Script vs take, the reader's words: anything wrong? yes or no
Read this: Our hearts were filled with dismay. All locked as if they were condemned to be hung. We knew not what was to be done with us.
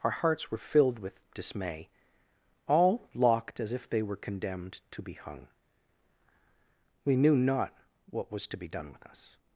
no